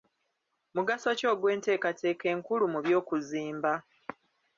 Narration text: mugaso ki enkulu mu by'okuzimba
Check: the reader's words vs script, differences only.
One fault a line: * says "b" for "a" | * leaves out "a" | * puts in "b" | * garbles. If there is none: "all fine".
* puts in "ogw'enteekateeka"